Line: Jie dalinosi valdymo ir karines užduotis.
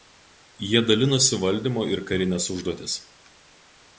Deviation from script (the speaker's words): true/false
false